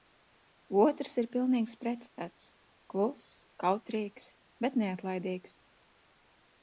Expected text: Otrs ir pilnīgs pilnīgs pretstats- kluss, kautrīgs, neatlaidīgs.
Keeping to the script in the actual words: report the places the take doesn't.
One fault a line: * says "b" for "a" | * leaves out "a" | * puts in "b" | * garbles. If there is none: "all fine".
* leaves out "pilnīgs"
* puts in "bet"